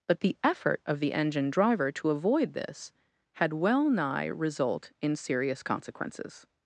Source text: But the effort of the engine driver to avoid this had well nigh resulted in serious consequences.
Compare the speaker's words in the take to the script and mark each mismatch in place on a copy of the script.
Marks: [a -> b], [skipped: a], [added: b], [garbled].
But the effort of the engine driver to avoid this had well nigh [resulted -> result] in serious consequences.